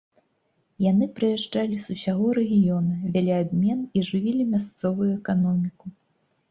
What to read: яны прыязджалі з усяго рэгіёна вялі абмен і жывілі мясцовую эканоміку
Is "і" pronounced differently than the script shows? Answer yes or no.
no